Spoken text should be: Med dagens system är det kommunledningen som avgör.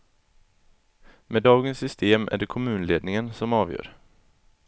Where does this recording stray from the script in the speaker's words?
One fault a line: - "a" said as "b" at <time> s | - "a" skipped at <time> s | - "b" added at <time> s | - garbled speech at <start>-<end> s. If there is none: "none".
none